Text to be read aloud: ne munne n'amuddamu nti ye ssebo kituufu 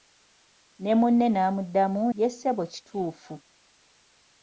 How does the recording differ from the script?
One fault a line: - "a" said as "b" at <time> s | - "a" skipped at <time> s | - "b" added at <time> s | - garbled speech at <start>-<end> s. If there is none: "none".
- "nti" skipped at 2.0 s